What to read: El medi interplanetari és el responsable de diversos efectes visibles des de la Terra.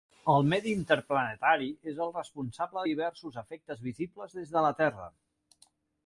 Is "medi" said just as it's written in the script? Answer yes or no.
yes